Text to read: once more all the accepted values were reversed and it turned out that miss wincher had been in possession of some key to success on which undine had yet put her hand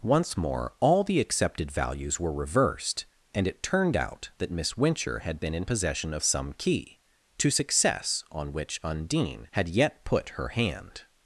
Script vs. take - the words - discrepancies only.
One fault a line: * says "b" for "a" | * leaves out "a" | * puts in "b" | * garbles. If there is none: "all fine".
all fine